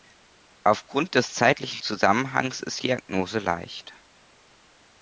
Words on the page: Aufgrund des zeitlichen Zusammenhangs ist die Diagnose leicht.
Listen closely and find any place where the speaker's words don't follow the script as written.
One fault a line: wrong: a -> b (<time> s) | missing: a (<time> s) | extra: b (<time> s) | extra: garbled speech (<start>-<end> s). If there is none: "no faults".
missing: die (2.8 s)